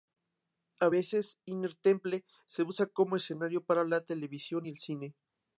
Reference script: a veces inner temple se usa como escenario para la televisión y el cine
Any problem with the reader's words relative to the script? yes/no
no